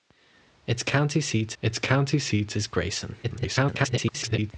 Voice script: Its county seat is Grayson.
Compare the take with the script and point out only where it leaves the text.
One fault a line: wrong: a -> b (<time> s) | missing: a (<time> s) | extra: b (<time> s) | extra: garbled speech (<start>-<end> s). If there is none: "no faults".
extra: its county seat (1.6 s)
extra: garbled speech (3.2-4.5 s)